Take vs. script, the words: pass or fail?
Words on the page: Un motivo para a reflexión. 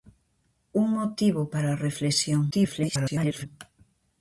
fail